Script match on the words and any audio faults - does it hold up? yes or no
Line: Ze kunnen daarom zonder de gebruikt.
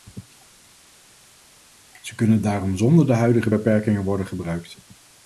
no